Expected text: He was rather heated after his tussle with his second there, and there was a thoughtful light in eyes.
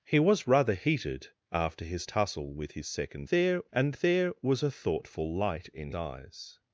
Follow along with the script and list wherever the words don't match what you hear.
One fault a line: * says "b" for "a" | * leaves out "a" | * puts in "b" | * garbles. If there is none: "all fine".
all fine